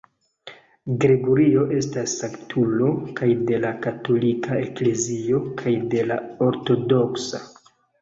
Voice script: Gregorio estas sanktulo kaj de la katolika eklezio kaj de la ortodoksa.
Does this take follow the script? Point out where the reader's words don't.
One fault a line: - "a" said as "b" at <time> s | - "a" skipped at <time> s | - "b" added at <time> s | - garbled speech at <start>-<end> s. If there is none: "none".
none